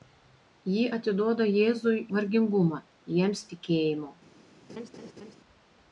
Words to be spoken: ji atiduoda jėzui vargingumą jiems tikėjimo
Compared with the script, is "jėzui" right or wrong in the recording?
right